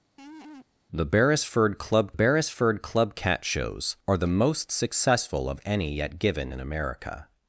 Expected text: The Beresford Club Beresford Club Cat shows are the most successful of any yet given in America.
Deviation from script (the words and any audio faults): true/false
true